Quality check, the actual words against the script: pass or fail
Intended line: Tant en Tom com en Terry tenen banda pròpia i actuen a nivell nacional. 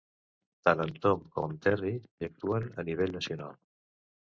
fail